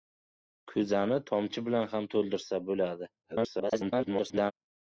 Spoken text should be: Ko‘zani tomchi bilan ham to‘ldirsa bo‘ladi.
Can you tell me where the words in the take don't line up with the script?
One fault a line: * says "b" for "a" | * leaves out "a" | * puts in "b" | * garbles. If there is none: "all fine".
* garbles